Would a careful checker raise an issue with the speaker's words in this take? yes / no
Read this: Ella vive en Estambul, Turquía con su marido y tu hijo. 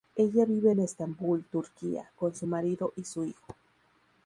yes